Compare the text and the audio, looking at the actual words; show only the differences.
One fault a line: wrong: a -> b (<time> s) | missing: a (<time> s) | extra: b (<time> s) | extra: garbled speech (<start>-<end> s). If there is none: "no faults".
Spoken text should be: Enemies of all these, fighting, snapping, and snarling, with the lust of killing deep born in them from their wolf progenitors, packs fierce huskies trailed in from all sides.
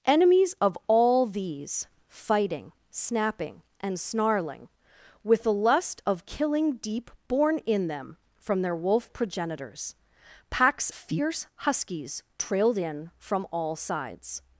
no faults